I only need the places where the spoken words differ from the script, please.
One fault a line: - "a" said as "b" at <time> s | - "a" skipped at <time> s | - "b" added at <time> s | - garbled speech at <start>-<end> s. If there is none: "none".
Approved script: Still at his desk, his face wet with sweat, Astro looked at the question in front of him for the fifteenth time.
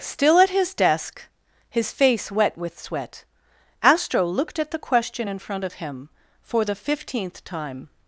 none